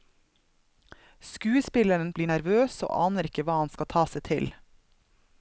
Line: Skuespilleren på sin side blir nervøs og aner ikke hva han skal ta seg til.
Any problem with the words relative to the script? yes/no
yes